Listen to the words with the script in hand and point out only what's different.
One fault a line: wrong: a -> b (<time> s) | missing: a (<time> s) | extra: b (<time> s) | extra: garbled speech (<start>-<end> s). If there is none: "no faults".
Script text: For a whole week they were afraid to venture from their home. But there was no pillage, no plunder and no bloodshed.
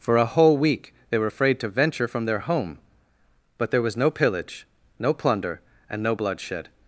no faults